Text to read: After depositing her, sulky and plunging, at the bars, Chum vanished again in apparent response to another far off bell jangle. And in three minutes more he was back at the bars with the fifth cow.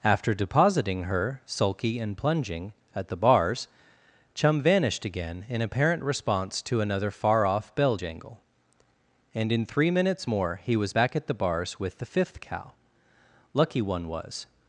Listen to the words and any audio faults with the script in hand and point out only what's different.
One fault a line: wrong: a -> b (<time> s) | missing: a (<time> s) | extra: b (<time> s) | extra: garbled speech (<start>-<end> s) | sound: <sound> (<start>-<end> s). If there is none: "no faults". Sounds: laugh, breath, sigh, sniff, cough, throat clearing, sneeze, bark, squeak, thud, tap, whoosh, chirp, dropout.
extra: Lucky one was (13.5 s)